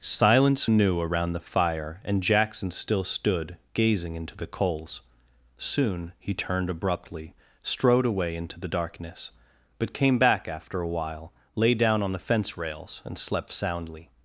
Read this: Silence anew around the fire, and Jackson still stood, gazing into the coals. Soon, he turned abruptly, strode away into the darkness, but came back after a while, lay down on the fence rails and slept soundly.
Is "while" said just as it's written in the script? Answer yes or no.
yes